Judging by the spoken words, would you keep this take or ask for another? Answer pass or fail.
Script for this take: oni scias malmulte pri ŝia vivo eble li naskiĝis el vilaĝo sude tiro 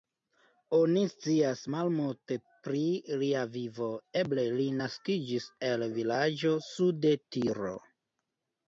fail